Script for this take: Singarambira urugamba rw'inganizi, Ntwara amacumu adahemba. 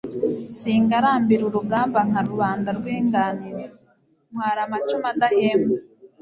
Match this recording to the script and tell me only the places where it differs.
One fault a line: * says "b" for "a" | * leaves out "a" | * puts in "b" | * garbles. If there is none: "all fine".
* puts in "nka rubanda"